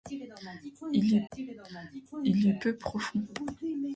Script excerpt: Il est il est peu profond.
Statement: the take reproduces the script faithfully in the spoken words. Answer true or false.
true